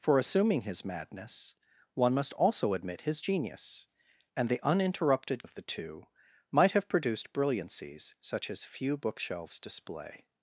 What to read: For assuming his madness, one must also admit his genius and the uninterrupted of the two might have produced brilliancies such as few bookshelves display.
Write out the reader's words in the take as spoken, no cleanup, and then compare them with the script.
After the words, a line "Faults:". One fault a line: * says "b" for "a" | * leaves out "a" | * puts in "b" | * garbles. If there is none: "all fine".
For assuming his madness, one must also admit his genius and the uninterrupted of the two might have produced brilliancies such as few bookshelves display.
Faults:
all fine